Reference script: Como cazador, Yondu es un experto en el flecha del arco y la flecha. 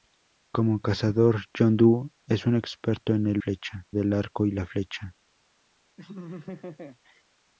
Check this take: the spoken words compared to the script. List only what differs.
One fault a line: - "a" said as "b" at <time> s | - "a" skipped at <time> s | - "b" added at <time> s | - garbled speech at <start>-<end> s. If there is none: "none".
none